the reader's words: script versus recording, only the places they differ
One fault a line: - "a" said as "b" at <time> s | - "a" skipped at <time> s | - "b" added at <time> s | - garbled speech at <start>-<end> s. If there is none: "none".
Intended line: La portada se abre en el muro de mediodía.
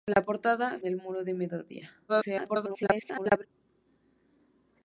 - "se abre en" skipped at 0.8 s
- garbled speech at 2.1-3.5 s